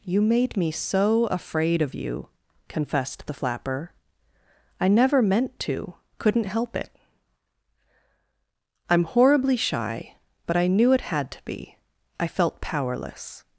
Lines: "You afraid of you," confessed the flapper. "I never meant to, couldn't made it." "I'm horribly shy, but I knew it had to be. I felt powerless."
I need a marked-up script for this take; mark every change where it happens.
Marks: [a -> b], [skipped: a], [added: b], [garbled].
"You [added: made me so] afraid of you," confessed the flapper. "I never meant to, couldn't [made -> help] it." "I'm horribly shy, but I knew it had to be. I felt powerless."